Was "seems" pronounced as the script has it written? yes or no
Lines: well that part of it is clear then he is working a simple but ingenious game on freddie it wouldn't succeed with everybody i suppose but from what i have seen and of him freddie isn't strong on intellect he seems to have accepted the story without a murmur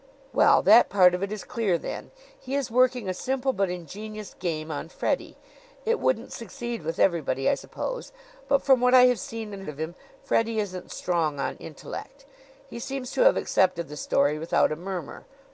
yes